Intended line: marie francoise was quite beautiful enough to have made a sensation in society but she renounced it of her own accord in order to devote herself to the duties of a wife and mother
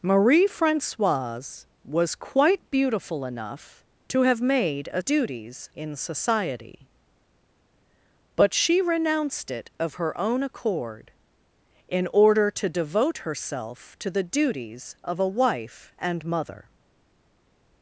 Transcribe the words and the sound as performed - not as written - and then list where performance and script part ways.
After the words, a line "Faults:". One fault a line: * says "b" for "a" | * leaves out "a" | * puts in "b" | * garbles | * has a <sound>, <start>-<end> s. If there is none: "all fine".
marie francoise was quite beautiful enough to have made a duties in society but she renounced it of her own accord in order to devote herself to the duties of a wife and mother
Faults:
* says "duties" for "sensation"